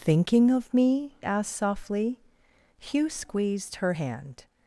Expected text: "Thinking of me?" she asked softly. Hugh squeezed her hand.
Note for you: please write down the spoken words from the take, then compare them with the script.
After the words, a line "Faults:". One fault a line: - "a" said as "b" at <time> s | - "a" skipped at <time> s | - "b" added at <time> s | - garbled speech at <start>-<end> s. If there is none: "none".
"Thinking of me?" asked softly. Hugh squeezed her hand.
Faults:
- "she" skipped at 1.1 s